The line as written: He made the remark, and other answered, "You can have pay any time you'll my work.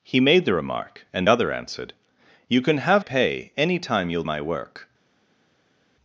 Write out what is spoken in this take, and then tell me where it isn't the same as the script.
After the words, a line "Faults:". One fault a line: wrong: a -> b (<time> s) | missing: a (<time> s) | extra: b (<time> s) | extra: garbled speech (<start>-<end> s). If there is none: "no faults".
He made the remark, and other answered, "You can have pay any time you'll my work.
Faults:
no faults